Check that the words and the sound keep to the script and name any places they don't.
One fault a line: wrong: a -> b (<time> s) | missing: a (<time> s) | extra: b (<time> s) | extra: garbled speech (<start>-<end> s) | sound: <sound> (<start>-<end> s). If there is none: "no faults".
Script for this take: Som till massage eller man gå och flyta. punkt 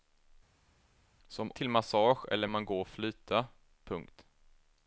no faults